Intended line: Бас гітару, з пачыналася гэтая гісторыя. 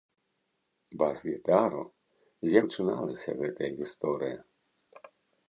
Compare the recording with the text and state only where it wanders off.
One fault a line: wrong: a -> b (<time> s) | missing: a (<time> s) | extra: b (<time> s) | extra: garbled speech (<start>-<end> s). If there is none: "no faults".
no faults